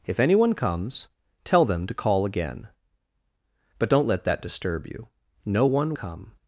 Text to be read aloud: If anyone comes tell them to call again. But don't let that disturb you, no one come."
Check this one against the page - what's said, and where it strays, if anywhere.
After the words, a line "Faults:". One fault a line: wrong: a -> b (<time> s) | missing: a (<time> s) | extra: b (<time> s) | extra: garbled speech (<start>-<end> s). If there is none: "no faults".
If anyone comes tell them to call again. But don't let that disturb you, no one come."
Faults:
no faults